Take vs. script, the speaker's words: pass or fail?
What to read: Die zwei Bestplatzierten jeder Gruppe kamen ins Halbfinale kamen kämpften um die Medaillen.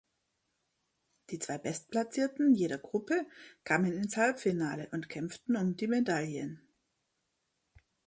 fail